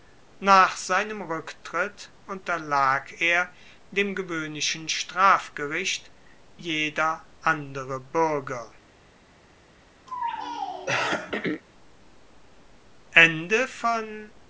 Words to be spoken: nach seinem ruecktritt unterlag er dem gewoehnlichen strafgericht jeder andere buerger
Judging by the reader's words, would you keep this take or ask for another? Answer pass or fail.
pass